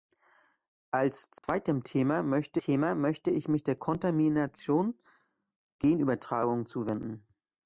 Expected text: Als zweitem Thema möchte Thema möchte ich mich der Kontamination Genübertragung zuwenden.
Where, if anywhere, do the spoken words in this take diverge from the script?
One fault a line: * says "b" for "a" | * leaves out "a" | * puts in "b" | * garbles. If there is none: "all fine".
all fine